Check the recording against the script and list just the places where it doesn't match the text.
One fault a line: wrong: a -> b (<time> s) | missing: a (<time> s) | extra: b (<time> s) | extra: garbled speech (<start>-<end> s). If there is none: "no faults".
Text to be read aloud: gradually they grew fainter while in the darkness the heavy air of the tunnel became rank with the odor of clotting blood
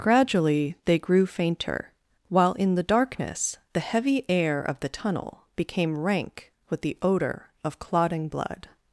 no faults